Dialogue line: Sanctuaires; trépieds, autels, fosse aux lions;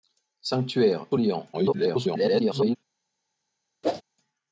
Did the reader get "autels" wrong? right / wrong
wrong